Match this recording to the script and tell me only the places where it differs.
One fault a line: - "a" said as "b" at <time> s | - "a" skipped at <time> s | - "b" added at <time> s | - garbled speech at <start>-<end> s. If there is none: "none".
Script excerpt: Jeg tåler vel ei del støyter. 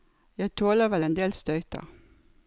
- "ei" said as "en" at 1.0 s